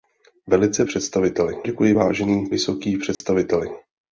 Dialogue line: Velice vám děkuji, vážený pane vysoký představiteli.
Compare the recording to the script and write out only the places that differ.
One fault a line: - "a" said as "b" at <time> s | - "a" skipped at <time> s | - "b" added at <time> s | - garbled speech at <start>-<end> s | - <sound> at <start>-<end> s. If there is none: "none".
- "vám" said as "představiteli" at 0.8 s
- "pane" skipped at 2.5 s
- dropout at 3.1-3.2 s